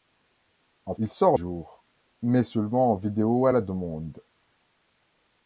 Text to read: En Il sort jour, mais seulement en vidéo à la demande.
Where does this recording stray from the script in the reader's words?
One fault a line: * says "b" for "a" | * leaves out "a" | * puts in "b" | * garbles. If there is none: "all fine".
all fine